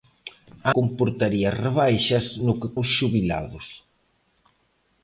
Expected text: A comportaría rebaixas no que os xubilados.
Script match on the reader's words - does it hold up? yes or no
yes